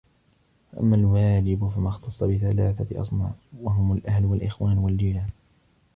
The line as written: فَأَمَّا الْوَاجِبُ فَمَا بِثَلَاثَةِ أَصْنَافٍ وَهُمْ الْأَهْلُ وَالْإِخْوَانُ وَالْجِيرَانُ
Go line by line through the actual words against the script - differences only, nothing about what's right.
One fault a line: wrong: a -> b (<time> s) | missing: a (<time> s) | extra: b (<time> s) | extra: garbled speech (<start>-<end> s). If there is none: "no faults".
extra: اخْتَصَّ (1.9 s)